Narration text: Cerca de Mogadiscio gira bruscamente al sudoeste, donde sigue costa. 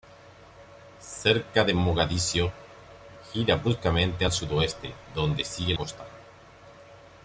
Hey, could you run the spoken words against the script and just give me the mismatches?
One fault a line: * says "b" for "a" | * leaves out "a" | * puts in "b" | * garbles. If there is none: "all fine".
all fine